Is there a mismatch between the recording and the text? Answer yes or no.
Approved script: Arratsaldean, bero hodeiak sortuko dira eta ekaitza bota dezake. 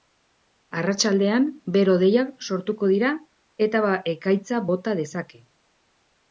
no